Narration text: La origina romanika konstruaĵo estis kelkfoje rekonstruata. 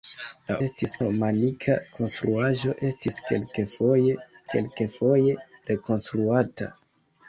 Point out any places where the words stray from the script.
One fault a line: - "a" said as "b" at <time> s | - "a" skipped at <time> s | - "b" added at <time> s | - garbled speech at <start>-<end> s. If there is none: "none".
- "origina" said as "estis" at 0.7 s
- "kelkfoje" added at 4.6 s